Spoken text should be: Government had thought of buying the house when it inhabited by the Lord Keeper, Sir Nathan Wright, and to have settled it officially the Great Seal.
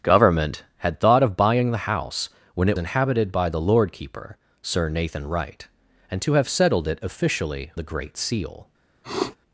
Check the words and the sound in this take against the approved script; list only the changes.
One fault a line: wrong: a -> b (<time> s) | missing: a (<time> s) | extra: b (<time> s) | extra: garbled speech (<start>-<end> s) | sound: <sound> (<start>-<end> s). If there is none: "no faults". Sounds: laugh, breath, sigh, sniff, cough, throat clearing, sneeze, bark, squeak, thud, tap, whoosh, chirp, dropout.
sound: sniff (9.0-9.4 s)